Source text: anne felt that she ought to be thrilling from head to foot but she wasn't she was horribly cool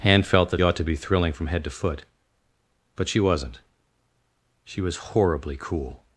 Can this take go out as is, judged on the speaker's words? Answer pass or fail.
fail